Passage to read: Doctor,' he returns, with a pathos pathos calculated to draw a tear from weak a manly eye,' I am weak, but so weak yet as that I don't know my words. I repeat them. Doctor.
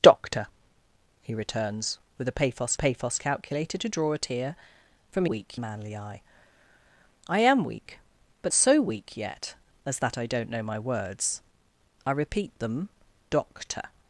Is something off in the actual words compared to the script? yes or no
no